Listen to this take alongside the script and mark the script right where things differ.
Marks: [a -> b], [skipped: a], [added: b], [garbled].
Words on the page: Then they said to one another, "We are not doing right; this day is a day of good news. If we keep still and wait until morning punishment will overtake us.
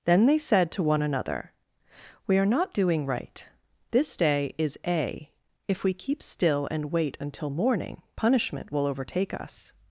Then they said to one another, "We are not doing right; this day is a [skipped: day of good news.] If we keep still and wait until morning punishment will overtake us.